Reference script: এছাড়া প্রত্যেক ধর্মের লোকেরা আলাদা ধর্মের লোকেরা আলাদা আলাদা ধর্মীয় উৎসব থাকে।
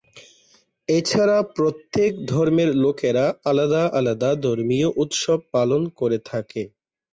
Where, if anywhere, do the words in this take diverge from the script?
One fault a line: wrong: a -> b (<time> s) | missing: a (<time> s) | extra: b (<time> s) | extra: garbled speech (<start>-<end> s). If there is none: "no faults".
missing: ধর্মের লোকেরা (3.8 s)
missing: আলাদা (4.3 s)
extra: পালন করে (5.5 s)